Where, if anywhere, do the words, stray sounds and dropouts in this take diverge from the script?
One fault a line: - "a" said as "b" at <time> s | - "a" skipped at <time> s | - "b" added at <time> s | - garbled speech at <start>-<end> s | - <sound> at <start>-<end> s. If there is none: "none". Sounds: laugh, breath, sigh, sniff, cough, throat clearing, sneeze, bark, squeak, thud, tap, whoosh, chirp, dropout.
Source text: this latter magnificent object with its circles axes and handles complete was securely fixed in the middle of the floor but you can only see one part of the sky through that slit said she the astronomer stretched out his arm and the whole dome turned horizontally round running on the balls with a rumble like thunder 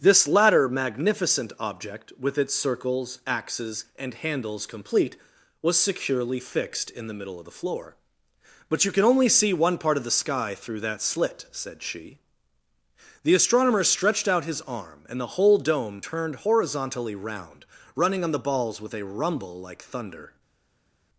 none